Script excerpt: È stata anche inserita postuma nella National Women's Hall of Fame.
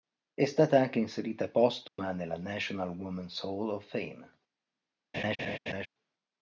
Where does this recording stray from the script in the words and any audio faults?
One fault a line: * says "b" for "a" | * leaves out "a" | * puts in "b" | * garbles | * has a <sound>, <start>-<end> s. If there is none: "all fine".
* has a dropout, 1.9-2.0 s
* has a laugh, 5.1-5.9 s